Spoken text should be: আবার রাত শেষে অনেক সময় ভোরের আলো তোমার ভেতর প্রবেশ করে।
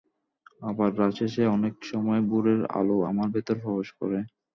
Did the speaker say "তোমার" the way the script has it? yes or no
no